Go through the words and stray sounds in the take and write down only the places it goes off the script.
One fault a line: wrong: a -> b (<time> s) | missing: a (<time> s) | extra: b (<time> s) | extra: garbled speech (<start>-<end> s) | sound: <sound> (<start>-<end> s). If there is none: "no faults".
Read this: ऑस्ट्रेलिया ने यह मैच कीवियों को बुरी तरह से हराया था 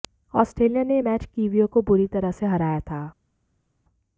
no faults